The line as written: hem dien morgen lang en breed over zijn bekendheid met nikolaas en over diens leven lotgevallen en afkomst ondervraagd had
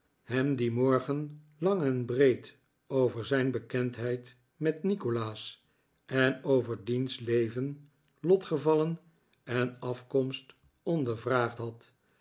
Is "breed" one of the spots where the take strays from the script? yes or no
no